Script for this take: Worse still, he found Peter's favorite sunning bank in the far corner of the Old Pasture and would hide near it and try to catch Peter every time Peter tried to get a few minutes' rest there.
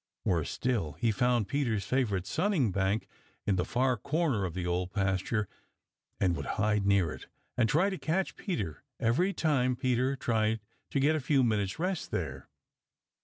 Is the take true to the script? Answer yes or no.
yes